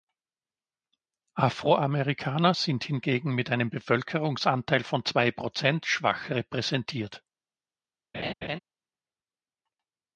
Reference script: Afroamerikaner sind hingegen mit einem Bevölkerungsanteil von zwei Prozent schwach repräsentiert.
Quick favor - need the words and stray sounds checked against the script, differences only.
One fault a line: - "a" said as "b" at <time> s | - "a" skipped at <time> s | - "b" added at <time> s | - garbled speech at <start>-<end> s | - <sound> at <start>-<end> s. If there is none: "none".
- laugh at 8.1-8.6 s